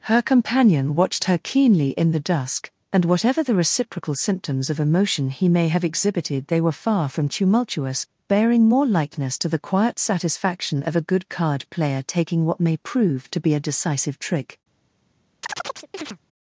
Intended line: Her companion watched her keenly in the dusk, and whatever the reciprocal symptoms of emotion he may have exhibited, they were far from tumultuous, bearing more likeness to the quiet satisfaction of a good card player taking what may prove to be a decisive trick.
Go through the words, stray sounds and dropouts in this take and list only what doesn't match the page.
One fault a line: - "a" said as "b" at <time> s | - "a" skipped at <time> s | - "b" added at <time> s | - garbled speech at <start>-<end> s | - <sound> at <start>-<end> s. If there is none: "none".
- chirp at 15.4-16.2 s